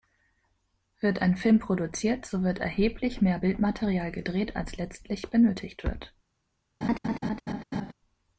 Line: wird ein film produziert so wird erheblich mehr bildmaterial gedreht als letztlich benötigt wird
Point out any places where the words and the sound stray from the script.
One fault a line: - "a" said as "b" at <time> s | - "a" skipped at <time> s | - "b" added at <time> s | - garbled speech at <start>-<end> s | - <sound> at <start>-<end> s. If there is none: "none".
- laugh at 6.8-7.9 s